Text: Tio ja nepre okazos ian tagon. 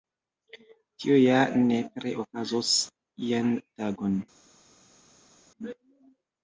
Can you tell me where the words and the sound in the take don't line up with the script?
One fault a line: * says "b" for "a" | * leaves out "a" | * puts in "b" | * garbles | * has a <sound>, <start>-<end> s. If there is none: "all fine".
all fine